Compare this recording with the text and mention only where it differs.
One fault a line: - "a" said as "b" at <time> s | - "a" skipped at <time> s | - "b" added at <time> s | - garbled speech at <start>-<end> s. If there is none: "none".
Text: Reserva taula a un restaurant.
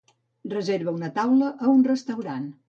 - "una" added at 1.0 s